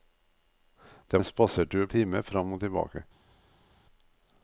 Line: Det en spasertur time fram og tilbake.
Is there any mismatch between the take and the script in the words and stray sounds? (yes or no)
no